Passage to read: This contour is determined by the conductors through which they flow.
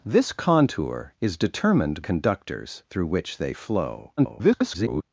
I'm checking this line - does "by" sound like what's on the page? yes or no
no